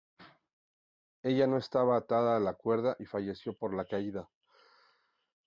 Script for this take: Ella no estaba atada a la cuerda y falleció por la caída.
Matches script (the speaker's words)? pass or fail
pass